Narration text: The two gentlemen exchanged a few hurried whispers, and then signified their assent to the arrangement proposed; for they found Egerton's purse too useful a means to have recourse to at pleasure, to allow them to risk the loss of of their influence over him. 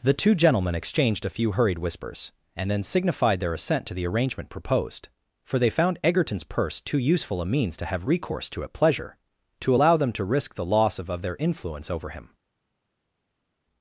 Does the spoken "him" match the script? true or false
true